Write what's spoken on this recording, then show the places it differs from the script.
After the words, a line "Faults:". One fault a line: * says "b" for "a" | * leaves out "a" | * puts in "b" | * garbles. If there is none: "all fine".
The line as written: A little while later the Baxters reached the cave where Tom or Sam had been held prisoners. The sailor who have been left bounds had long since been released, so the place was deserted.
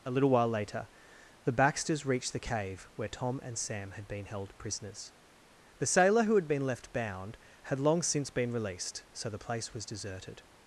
A little while later the Baxters reached the cave where Tom and Sam had been held prisoners. The sailor who had been left bound had long since been released, so the place was deserted.
Faults:
* says "and" for "or"
* says "had" for "have"
* says "bound" for "bounds"